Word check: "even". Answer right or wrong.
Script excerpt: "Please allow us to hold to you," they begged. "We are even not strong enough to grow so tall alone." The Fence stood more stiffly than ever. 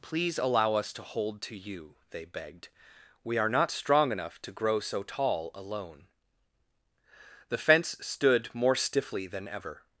wrong